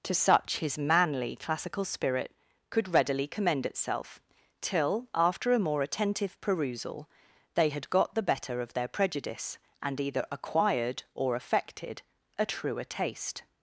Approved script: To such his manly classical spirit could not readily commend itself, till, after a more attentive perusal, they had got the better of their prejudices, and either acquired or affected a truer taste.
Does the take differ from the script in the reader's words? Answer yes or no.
yes